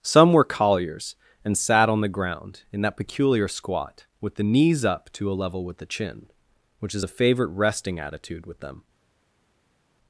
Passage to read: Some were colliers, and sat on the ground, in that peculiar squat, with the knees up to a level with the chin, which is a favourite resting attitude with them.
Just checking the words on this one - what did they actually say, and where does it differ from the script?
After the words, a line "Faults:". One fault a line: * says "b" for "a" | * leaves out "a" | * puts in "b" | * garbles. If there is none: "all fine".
Some were colliers, and sat on the ground, in that peculiar squat, with the knees up to a level with the chin, which is a favourite resting attitude with them.
Faults:
all fine